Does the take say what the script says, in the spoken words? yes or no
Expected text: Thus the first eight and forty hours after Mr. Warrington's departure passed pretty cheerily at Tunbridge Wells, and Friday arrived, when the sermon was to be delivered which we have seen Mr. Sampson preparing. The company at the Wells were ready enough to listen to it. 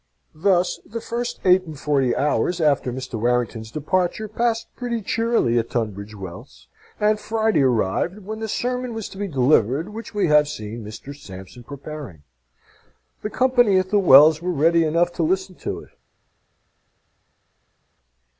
yes